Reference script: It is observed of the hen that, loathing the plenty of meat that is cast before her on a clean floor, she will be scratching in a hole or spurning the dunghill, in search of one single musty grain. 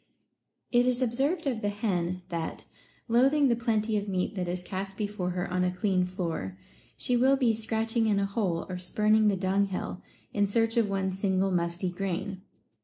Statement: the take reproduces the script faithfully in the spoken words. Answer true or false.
true